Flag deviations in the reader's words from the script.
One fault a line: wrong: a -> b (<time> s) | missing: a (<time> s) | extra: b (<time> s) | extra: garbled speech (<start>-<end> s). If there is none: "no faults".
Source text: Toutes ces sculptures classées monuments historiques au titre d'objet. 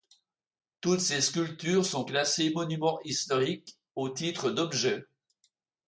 extra: sont (1.9 s)